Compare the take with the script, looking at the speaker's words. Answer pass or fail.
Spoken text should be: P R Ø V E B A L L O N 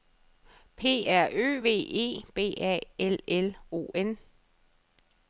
pass